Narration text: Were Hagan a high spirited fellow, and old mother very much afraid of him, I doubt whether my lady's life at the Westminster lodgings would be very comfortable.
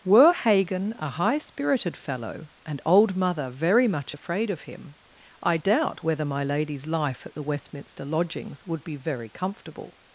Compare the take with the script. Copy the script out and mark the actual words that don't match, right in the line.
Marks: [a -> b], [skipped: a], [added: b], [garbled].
Were Hagan a high spirited fellow, and old mother very much afraid of him, I doubt whether my lady's life at the Westminster lodgings would be very comfortable.